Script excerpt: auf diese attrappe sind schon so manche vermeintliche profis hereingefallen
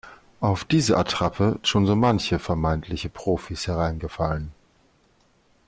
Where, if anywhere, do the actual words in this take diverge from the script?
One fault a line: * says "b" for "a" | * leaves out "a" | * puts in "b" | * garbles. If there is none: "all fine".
* leaves out "sind"